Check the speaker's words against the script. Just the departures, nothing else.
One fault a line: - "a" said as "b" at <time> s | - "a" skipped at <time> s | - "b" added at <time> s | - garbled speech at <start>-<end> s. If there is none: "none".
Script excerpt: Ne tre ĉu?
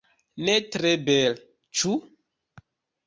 - "bele" added at 1.1 s